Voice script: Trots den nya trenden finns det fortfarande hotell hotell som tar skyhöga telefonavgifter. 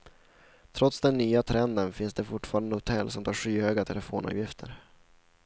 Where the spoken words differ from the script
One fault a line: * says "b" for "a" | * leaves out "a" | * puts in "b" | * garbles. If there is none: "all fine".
* leaves out "hotell"